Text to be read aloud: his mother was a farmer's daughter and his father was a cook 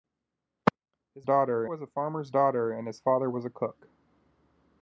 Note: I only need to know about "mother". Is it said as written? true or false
false